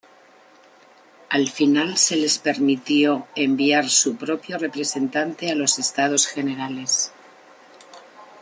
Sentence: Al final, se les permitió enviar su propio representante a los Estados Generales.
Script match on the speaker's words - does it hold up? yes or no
yes